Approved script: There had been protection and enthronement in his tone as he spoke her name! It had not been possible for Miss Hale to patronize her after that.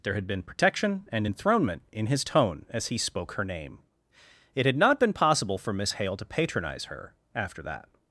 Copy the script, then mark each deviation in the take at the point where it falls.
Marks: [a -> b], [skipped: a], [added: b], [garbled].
There had been protection and enthronement in his tone as he spoke her name! It had not been possible for Miss Hale to patronize her after that.